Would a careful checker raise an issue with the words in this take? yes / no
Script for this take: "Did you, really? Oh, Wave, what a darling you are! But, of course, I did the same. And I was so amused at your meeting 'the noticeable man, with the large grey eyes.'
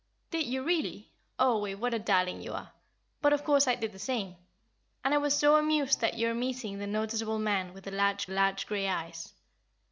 yes